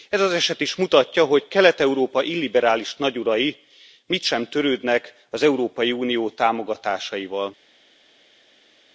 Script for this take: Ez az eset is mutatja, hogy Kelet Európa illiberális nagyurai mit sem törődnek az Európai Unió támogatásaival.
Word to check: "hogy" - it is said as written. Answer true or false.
true